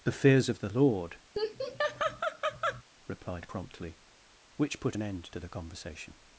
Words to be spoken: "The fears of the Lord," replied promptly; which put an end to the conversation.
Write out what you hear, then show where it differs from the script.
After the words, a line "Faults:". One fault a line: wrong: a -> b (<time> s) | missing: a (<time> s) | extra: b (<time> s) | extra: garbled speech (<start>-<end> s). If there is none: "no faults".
"The fears of the Lord," replied promptly; which put an end to the conversation.
Faults:
no faults